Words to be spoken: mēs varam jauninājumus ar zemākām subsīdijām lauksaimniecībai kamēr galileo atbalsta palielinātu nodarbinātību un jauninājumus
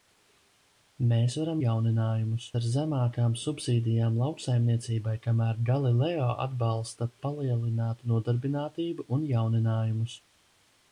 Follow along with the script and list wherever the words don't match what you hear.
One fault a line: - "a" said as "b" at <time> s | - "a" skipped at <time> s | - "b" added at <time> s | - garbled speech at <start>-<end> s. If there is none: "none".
none